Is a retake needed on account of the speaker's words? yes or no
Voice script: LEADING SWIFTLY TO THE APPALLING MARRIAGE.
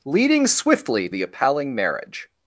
yes